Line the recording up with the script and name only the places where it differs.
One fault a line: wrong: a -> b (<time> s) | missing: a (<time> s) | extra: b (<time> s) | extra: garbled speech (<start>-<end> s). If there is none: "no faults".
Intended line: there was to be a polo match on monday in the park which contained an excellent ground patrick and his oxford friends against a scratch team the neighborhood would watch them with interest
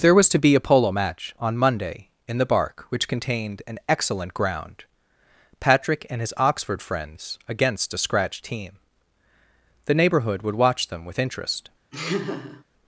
wrong: park -> bark (2.5 s)